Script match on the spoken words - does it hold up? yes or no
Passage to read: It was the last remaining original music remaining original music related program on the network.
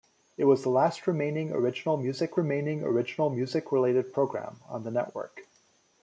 yes